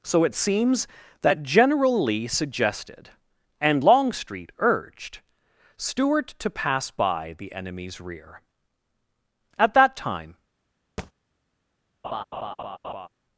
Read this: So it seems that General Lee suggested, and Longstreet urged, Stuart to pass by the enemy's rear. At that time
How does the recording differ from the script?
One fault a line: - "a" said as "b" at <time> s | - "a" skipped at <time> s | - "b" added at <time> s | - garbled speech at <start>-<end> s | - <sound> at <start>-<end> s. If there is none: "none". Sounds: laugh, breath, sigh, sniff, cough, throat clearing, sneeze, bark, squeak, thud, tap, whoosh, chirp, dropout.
- thud at 11.0-11.1 s
- laugh at 12.0-13.1 s